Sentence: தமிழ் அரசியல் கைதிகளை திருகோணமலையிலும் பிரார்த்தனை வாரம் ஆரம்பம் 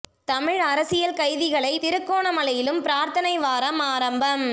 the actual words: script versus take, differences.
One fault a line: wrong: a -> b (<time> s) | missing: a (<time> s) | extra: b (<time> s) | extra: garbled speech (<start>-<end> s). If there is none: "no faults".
no faults